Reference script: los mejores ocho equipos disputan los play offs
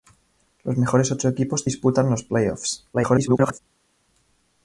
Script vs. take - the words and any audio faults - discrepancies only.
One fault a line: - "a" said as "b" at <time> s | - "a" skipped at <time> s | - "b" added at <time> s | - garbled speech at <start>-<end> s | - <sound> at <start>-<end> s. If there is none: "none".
- garbled speech at 2.9-3.6 s